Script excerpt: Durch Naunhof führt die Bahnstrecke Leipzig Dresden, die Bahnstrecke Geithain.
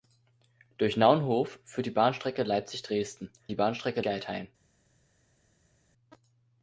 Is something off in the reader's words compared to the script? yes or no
no